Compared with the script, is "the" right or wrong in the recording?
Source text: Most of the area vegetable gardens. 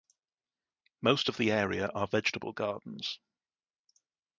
right